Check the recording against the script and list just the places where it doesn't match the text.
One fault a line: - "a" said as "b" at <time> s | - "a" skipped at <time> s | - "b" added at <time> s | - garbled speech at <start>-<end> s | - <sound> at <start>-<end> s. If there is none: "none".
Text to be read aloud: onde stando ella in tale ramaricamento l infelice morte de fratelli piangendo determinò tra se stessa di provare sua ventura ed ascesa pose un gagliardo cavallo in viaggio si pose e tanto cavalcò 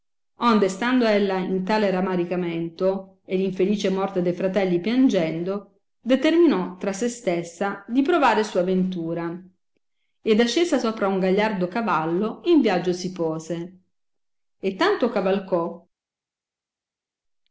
- "e" added at 3.2 s
- "pose" said as "sopra" at 10.8 s